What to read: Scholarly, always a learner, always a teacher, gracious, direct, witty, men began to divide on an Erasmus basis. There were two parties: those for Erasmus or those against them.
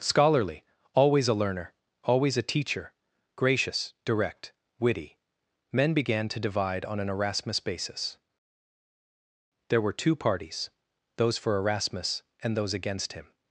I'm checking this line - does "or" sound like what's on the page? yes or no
no